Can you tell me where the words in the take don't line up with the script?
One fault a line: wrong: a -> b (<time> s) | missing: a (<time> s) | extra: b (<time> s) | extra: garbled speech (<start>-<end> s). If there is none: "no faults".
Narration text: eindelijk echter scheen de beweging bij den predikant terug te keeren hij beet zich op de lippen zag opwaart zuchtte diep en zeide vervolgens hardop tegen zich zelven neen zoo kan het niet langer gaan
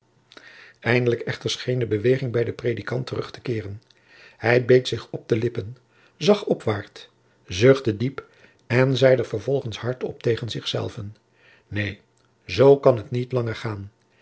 no faults